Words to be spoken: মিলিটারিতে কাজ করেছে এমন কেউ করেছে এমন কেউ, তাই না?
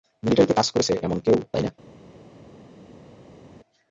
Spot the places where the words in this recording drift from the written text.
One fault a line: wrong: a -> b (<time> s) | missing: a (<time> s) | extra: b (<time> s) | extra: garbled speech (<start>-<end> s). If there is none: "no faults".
missing: করেছে এমন কেউ (1.4 s)